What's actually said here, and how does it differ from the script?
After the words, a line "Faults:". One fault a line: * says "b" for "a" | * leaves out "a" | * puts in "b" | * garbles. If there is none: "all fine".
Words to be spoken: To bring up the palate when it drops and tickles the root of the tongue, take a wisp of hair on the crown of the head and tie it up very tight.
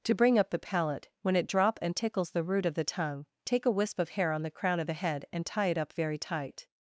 To bring up the palate when it drop and tickles the root of the tongue, take a wisp of hair on the crown of the head and tie it up very tight.
Faults:
* says "drop" for "drops"